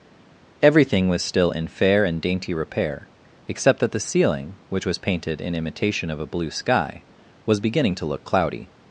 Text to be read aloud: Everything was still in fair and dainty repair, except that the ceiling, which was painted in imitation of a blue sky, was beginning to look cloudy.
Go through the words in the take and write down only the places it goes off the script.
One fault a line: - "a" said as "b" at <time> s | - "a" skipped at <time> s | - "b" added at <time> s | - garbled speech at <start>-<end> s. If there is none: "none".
none